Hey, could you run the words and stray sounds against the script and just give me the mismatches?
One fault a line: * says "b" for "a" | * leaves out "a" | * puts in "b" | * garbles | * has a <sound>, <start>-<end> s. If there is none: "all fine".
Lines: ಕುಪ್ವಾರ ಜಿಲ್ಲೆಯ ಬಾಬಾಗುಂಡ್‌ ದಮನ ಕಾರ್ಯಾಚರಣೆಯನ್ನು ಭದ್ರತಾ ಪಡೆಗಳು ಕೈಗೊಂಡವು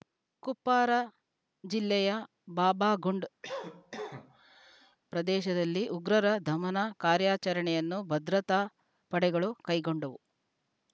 * has a cough, 3.4-5.0 s
* puts in "ಪ್ರದೇಶದಲ್ಲಿ ಉಗ್ರರ"